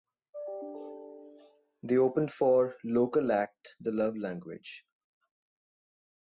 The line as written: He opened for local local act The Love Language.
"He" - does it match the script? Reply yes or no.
no